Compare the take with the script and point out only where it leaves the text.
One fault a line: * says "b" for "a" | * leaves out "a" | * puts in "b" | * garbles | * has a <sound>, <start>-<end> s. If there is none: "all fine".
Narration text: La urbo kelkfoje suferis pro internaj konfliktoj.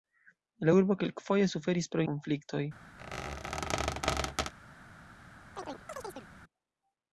* leaves out "internaj"
* has a squeak, 3.0-4.5 s
* has a chirp, 5.5-6.3 s